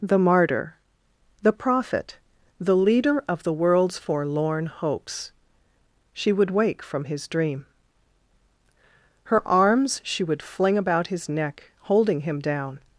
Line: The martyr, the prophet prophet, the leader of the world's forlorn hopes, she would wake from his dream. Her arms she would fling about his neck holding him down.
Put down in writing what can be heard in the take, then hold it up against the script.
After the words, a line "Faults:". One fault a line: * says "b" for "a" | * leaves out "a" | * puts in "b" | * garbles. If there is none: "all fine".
The martyr, the prophet, the leader of the world's forlorn hopes, she would wake from his dream. Her arms she would fling about his neck holding him down.
Faults:
* leaves out "prophet"